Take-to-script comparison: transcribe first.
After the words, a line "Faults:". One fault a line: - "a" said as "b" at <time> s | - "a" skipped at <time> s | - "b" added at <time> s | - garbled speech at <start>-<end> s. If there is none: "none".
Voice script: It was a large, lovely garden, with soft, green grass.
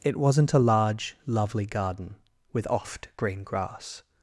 It wasn't a large, lovely garden, with oft, green grass.
Faults:
- "was" said as "wasn't" at 0.2 s
- "soft" said as "oft" at 2.7 s